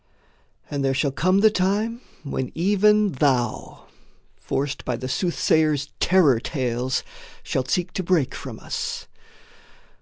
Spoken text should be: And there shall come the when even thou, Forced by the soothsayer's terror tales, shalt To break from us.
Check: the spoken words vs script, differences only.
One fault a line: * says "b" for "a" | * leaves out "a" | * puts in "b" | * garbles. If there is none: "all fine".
* puts in "time"
* puts in "seek"